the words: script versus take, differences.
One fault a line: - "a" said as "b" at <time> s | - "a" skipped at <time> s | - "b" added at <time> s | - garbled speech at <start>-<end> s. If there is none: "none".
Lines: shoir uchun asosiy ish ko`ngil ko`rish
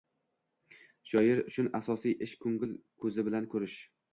- "ko`zi bilan" added at 3.0 s